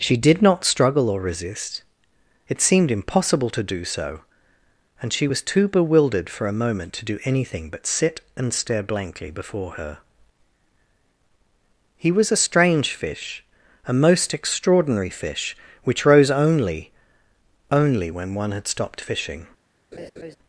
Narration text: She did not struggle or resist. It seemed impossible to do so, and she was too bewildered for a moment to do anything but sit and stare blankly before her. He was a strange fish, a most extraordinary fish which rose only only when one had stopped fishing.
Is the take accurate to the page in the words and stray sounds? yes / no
no